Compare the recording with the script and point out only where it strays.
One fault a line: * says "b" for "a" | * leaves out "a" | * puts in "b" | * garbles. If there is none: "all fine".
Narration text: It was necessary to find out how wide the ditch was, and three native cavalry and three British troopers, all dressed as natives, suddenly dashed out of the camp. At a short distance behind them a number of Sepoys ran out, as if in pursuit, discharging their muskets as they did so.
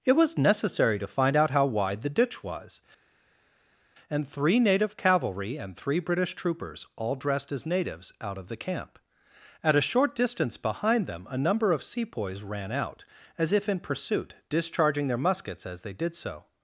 * leaves out "suddenly dashed"